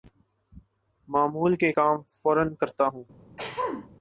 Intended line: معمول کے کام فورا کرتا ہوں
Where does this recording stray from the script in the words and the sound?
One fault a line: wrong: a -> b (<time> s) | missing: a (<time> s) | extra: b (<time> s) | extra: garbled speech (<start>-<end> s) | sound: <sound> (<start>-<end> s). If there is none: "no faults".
sound: throat clearing (3.4-3.9 s)